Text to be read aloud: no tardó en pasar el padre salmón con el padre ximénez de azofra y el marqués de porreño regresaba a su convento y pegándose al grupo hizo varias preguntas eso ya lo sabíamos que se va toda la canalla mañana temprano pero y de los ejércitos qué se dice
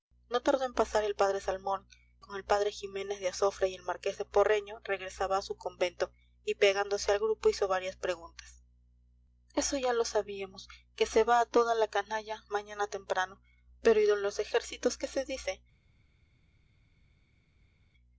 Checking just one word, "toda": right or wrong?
right